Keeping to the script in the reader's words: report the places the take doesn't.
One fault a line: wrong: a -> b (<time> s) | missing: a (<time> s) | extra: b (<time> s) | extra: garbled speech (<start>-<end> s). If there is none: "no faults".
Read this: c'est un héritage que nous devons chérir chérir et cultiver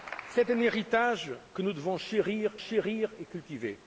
no faults